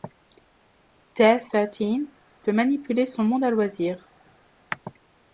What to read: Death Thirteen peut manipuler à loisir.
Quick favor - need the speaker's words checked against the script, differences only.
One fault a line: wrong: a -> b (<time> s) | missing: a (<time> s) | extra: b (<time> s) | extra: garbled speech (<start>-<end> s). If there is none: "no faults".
extra: son monde (3.0 s)